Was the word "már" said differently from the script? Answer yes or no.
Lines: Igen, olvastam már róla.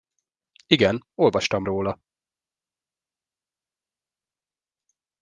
yes